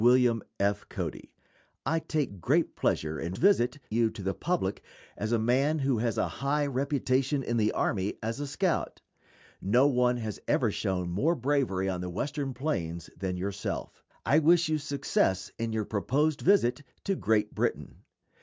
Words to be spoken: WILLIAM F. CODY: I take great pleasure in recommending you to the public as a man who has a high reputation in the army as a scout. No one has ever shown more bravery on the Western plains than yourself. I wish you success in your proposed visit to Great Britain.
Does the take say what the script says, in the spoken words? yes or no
no